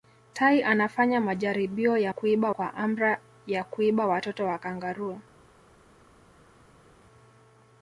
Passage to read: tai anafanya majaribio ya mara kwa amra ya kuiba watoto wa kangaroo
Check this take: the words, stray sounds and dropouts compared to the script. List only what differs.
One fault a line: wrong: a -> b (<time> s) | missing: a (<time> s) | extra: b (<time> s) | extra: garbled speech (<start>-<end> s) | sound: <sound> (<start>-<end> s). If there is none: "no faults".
wrong: mara -> kuiba (2.1 s)